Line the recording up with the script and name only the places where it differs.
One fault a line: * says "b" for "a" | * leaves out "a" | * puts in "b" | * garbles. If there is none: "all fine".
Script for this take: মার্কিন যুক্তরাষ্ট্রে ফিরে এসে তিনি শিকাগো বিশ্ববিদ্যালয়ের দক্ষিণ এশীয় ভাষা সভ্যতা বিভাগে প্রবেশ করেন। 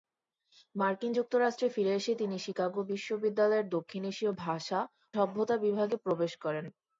all fine